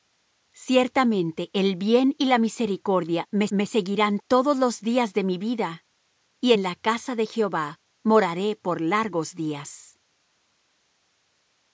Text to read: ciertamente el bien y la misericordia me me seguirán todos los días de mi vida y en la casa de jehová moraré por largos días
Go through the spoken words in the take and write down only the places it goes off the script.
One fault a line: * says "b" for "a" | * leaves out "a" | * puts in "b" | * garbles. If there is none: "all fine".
all fine